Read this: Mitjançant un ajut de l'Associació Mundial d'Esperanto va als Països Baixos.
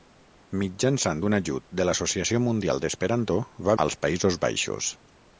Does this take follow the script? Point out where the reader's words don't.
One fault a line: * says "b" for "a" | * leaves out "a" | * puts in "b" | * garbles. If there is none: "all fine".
all fine